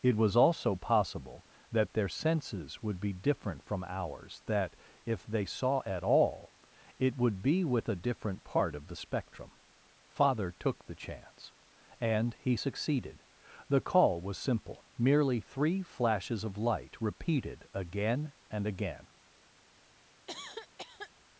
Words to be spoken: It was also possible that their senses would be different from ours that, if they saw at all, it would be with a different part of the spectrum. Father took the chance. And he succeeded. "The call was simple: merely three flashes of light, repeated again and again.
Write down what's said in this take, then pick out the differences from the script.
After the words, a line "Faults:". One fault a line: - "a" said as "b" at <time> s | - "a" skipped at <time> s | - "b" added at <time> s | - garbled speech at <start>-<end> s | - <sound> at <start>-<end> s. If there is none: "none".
It was also possible that their senses would be different from ours that, if they saw at all, it would be with a different part of the spectrum. Father took the chance. And he succeeded. "The call was simple: merely three flashes of light, repeated again and again.
Faults:
- cough at 20.3-21.1 s